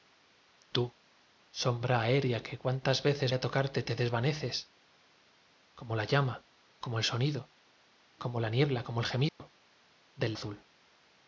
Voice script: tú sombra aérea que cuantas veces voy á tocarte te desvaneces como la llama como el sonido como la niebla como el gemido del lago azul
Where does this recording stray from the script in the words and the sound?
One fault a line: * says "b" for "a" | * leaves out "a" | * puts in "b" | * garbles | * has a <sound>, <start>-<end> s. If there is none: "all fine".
* leaves out "voy"
* has a dropout, 9.3-9.4 s
* leaves out "lago"